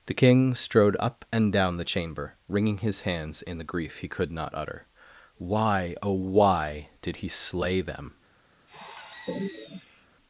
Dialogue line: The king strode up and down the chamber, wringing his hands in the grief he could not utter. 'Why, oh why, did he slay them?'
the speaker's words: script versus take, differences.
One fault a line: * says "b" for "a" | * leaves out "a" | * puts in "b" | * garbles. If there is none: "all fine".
all fine